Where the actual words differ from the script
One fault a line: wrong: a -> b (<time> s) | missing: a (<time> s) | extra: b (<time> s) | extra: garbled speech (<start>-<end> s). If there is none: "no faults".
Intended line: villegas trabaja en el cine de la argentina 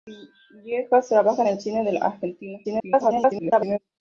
extra: garbled speech (2.6-3.8 s)